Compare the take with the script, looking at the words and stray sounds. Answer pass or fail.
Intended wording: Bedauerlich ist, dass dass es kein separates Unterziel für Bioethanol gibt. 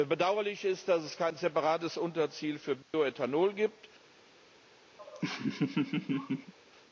fail